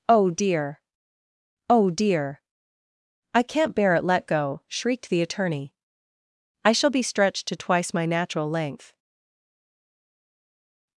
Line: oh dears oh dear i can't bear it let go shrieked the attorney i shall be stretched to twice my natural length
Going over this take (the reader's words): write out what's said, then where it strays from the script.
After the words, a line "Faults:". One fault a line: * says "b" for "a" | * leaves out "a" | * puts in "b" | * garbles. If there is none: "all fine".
oh dear oh dear i can't bear it let go shrieked the attorney i shall be stretched to twice my natural length
Faults:
* says "dear" for "dears"